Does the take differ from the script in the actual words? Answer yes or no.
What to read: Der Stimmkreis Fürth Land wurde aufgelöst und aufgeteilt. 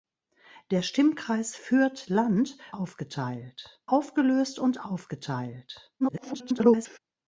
yes